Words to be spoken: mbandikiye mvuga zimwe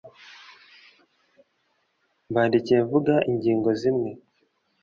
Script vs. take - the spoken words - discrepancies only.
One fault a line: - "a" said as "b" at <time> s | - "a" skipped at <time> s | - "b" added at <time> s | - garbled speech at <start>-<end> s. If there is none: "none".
- "ingingo" added at 3.3 s